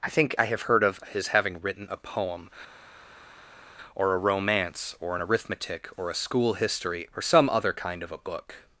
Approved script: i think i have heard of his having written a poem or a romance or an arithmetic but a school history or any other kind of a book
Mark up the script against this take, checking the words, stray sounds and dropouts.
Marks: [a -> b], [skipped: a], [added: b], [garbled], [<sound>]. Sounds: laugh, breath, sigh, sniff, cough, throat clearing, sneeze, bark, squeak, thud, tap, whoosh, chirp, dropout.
i think i have heard of his having written a poem or a romance or an arithmetic [but -> or] a school history or [any -> some] other kind of a book